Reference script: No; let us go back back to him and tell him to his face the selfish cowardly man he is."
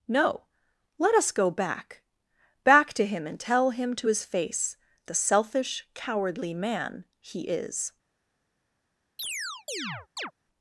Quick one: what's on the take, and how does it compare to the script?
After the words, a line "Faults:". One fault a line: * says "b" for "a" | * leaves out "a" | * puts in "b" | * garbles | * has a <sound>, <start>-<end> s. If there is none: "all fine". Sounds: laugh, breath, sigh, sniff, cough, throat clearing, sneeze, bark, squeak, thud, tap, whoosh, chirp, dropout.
No; let us go back back to him and tell him to his face the selfish cowardly man he is."
Faults:
* has a chirp, 9.2-10.3 s